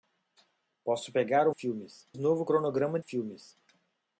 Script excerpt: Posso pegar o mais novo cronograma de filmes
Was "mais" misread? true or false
true